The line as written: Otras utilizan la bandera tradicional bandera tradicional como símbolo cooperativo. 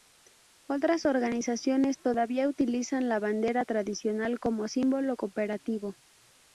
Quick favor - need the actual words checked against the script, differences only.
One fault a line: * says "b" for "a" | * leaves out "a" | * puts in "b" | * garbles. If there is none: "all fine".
* puts in "organizaciones todavía"
* leaves out "bandera tradicional"